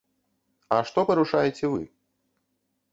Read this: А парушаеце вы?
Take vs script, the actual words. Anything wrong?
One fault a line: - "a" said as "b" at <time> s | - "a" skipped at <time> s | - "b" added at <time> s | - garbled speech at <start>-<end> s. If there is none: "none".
- "што" added at 0.9 s